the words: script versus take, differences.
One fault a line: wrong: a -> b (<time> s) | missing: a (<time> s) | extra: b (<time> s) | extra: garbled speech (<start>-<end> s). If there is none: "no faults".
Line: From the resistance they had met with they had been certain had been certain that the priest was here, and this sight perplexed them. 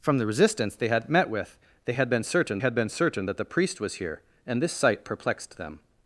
no faults